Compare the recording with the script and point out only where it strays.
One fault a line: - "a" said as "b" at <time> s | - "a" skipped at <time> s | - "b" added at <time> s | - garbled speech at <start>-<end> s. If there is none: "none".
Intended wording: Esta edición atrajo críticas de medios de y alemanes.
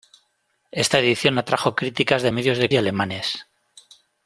none